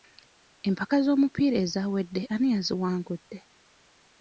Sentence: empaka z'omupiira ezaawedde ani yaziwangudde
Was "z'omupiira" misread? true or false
false